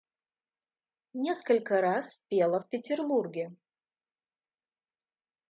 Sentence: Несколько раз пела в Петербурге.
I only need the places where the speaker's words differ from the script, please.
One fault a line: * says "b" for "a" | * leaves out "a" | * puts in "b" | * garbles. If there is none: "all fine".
all fine